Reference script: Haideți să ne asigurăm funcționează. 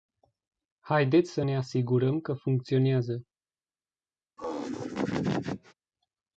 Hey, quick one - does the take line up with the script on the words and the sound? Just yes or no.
no